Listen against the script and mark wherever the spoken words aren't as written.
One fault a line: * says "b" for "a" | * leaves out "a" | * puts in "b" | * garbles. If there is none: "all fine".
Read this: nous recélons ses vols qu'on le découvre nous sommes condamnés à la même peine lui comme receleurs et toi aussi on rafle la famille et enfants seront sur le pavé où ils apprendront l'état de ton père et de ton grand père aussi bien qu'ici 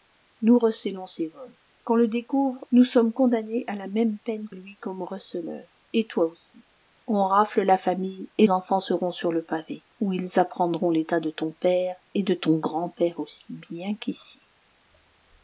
all fine